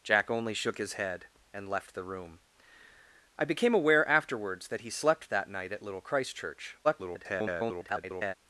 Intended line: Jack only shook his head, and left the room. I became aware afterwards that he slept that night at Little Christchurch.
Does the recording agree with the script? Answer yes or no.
no